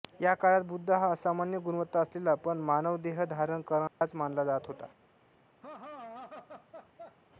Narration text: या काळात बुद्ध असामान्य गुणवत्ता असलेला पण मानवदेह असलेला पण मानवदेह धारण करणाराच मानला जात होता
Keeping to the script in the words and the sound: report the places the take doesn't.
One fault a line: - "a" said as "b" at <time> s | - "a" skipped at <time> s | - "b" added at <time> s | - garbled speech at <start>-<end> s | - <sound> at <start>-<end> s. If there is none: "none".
- "हा" added at 0.9 s
- "असलेला पण मानवदेह" skipped at 3.2 s
- dropout at 3.9-4.0 s
- laugh at 5.6-7.2 s